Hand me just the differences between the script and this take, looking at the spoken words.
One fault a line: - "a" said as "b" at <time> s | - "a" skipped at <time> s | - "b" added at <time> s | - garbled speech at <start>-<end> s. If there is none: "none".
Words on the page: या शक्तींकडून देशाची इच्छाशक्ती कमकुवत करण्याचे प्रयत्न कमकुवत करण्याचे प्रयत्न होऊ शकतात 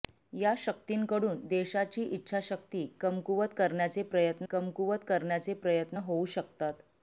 none